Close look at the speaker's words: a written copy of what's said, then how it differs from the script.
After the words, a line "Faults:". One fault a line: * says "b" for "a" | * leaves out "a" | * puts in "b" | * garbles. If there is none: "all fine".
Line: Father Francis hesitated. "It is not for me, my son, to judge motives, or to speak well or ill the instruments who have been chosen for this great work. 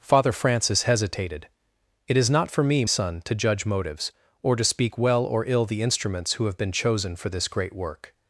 Father Francis hesitated. "It is not for me, son, to judge motives, or to speak well or ill the instruments who have been chosen for this great work.
Faults:
* leaves out "my"